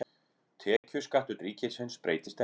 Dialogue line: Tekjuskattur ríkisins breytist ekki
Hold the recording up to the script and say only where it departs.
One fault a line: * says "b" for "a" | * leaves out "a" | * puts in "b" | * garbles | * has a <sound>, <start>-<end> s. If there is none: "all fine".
* has a dropout, 0.8-0.8 s